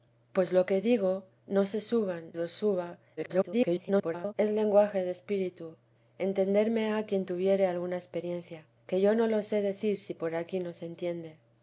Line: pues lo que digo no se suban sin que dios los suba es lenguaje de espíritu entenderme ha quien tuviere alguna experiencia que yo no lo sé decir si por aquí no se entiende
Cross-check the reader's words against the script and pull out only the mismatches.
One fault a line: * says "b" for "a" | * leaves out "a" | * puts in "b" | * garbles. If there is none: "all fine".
* leaves out "sin que dios"
* garbles